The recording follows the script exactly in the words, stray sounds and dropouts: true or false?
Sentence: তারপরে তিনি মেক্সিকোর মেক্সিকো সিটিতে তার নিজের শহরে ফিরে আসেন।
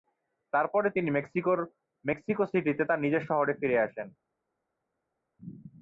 true